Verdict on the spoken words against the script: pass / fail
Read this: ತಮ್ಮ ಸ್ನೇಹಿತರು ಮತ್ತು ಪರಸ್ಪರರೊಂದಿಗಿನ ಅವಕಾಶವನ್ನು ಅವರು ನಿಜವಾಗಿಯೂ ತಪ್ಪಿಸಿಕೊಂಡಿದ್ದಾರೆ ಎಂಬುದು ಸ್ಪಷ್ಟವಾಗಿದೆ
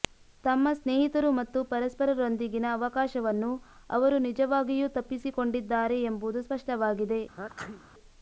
pass